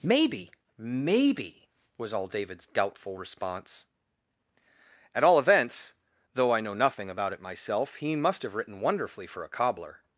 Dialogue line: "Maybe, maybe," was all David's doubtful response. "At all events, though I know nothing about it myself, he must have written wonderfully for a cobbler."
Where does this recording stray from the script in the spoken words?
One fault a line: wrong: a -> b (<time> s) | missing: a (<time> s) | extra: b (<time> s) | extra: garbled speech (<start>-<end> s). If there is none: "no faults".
no faults